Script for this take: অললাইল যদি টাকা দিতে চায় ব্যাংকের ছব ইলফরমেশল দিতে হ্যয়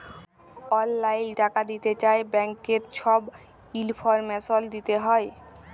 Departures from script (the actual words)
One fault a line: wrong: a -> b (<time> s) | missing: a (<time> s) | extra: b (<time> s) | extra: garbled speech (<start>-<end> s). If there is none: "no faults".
missing: যদি (1.3 s)